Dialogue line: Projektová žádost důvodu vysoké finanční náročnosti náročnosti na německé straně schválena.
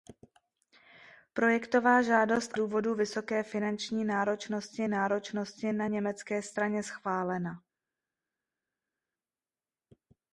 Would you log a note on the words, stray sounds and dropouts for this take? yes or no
no